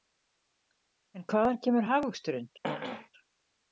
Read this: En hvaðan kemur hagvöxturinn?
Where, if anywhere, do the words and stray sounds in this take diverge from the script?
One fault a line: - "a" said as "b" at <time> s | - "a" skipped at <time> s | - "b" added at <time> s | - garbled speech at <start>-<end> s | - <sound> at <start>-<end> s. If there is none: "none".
- throat clearing at 2.6-3.1 s